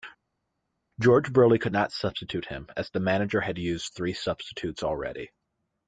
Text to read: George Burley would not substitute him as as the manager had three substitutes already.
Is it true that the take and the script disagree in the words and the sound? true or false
true